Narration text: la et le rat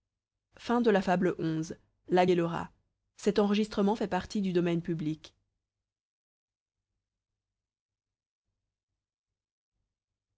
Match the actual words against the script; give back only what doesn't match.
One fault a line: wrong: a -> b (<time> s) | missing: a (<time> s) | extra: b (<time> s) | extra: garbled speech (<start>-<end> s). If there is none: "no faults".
no faults